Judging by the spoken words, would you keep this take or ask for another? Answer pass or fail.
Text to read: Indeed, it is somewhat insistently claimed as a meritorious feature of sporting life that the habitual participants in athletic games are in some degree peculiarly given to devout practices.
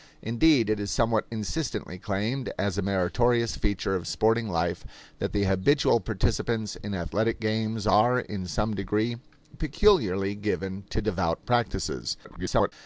fail